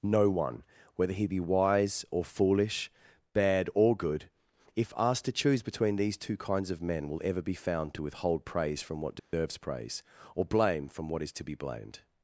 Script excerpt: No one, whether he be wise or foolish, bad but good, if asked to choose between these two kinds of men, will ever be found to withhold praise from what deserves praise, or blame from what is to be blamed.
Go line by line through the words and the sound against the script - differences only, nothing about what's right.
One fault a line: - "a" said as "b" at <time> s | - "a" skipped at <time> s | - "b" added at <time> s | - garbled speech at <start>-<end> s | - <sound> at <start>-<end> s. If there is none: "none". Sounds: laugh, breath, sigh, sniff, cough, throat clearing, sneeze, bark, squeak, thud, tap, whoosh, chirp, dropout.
- "but" said as "or" at 3.8 s
- dropout at 9.2-9.3 s